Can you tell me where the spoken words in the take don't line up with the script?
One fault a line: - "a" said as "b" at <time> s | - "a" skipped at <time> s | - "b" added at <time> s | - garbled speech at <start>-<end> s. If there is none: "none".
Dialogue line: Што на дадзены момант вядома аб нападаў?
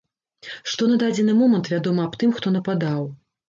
- "тым хто" added at 2.2 s